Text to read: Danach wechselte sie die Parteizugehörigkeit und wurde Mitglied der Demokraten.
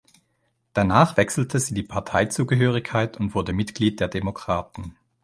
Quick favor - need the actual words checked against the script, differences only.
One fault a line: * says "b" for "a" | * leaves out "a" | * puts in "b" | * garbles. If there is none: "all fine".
all fine